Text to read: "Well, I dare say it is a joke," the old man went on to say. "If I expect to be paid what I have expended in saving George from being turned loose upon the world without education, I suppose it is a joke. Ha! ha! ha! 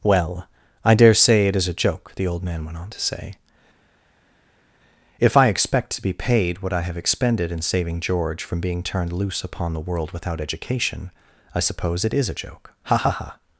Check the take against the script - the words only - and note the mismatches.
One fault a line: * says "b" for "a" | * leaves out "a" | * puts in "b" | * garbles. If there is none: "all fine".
all fine